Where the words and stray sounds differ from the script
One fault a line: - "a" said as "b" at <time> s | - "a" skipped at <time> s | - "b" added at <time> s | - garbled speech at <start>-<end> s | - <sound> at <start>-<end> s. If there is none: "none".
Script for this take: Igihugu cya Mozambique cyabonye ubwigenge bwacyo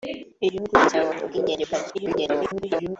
- "Mozambique" skipped at 0.9 s
- garbled speech at 1.9-3.0 s